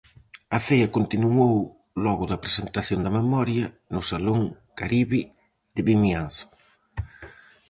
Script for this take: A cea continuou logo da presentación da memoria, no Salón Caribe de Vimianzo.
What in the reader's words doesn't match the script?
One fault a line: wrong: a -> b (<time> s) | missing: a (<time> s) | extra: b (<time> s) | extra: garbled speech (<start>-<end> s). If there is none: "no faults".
no faults